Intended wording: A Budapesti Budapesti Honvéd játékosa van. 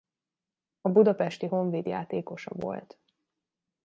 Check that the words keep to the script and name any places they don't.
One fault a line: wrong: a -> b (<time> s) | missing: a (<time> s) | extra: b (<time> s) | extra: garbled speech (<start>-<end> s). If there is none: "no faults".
missing: Budapesti (1.5 s)
wrong: van -> volt (2.5 s)